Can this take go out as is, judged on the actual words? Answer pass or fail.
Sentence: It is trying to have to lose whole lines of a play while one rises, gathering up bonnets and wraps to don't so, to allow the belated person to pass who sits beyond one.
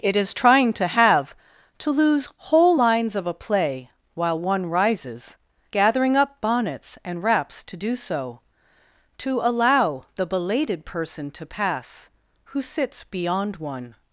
fail